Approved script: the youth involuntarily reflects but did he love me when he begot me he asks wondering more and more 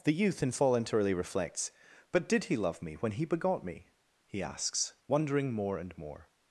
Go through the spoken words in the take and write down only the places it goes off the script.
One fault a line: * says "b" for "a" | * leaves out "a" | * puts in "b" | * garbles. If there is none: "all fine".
all fine